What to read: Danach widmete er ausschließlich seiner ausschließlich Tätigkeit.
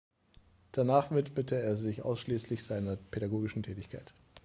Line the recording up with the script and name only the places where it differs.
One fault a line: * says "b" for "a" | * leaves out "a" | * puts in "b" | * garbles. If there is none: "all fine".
* puts in "sich"
* says "pädagogischen" for "ausschließlich"